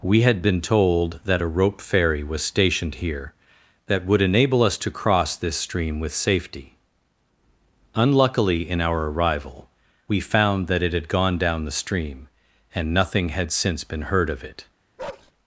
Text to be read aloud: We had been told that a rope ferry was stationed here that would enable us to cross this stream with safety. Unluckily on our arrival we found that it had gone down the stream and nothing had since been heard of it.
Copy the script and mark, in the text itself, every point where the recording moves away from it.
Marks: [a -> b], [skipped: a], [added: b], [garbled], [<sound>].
We had been told that a rope ferry was stationed here that would enable us to cross this stream with safety. Unluckily [on -> in] our arrival we found that it had gone down the stream and nothing had since been heard of it. [bark]